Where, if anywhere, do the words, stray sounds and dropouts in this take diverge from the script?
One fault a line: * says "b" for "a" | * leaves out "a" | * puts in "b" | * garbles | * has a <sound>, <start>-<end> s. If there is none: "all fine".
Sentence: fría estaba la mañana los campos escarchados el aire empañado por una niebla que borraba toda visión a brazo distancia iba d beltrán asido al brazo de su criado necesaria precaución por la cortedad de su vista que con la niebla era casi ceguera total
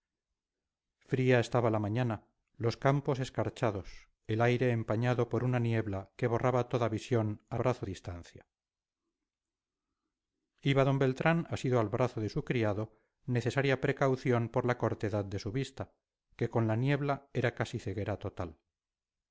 all fine